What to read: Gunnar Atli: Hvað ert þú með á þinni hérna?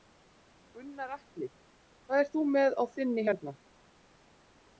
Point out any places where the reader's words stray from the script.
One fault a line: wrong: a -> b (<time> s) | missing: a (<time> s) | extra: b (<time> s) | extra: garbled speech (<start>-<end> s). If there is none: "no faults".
no faults